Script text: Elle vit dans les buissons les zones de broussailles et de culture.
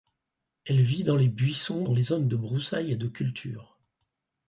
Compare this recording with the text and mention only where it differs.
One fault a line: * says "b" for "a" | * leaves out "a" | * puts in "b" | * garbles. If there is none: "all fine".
* puts in "dans"